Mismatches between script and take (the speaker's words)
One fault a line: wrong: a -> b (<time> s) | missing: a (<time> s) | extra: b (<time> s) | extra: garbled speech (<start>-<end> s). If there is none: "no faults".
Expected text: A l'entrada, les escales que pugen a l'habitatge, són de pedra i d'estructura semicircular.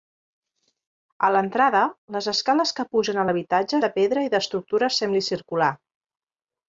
missing: són (3.8 s)